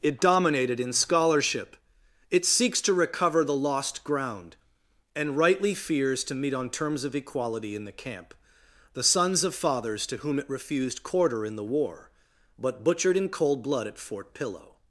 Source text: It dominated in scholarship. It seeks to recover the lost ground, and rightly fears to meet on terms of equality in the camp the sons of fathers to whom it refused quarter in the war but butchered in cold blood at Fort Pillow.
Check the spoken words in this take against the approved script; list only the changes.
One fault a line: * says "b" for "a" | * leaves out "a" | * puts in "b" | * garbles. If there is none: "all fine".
all fine